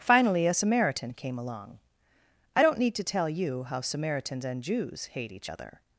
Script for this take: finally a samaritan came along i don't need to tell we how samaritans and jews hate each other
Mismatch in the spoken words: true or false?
true